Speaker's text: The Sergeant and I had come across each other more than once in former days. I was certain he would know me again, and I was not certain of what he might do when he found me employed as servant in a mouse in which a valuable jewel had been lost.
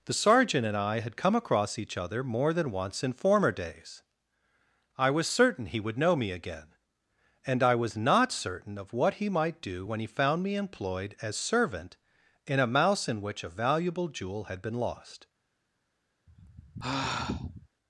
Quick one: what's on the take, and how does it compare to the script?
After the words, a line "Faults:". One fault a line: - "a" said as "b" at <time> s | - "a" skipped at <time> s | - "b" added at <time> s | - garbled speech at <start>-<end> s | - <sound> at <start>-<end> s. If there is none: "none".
The Sergeant and I had come across each other more than once in former days. I was certain he would know me again, and I was not certain of what he might do when he found me employed as servant in a mouse in which a valuable jewel had been lost.
Faults:
- sigh at 16.3-17.7 s